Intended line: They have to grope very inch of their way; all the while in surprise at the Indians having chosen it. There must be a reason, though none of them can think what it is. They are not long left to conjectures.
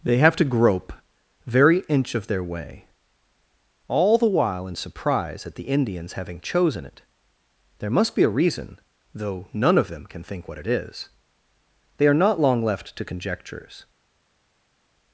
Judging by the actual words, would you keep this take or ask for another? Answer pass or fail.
pass